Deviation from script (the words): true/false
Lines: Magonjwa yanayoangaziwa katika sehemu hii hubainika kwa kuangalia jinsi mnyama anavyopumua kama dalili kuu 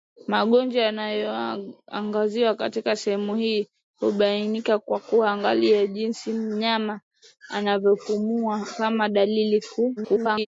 true